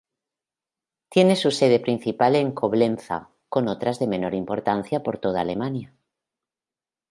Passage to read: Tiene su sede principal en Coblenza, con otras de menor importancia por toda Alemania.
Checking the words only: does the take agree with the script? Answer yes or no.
yes